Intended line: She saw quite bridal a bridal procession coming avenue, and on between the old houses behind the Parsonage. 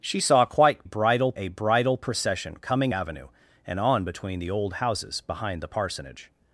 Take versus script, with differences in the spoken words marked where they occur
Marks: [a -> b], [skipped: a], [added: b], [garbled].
She saw quite bridal a bridal procession coming avenue, and on between the old houses behind the Parsonage.